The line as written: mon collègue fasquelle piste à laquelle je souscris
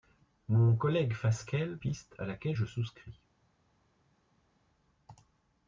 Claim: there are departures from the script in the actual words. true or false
false